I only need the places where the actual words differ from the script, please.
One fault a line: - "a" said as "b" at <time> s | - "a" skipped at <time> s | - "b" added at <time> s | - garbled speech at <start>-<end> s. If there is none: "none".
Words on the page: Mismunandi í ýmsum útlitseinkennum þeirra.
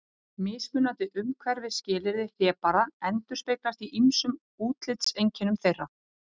- "umhverfisskilyrði hlébarða endurspeglast" added at 1.2 s